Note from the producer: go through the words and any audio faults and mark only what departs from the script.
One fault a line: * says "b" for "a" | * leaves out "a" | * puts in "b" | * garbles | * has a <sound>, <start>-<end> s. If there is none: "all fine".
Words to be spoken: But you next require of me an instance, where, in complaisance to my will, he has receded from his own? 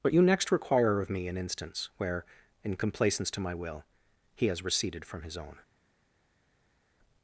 all fine